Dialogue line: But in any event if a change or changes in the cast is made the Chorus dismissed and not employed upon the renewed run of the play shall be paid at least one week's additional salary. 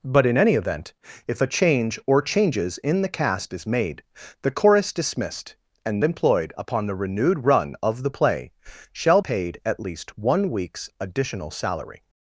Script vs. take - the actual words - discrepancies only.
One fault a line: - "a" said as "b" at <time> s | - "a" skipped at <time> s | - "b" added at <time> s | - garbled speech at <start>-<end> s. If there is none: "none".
- "not" skipped at 6.0 s
- "be" skipped at 9.2 s